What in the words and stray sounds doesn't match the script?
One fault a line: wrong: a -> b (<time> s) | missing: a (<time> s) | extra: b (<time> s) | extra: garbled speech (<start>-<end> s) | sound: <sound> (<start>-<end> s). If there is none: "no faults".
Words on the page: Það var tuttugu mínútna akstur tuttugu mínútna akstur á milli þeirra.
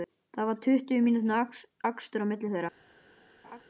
missing: tuttugu mínútna akstur (2.2 s)
sound: laugh (3.4-3.6 s)